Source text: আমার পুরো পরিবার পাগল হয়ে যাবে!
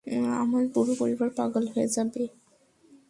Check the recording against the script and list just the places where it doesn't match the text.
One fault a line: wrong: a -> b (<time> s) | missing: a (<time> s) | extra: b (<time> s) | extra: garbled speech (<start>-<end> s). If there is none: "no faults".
no faults